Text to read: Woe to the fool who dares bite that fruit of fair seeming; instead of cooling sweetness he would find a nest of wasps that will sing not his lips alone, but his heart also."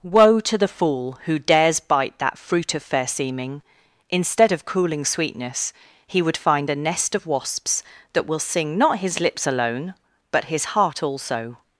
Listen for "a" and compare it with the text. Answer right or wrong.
right